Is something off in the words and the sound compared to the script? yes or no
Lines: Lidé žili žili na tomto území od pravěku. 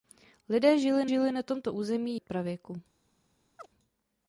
yes